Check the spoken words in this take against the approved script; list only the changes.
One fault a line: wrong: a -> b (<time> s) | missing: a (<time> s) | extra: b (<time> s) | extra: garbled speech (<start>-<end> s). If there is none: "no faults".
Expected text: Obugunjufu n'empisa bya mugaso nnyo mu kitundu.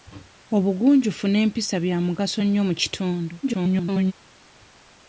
extra: garbled speech (3.4-4.1 s)